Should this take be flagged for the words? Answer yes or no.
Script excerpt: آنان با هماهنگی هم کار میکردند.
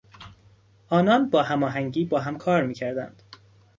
yes